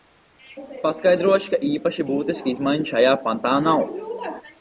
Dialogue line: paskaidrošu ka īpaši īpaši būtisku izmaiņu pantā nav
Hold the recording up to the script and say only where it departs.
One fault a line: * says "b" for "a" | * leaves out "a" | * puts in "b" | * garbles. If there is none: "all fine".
* leaves out "īpaši"
* puts in "šajā"